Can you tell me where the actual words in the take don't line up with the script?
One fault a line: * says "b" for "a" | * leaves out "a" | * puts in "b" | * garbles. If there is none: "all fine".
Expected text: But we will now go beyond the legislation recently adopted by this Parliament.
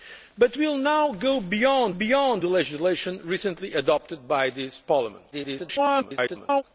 * puts in "beyond"
* garbles